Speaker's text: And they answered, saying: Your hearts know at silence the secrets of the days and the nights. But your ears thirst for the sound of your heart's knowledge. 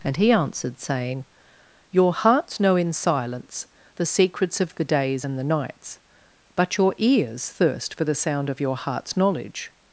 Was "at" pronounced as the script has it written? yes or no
no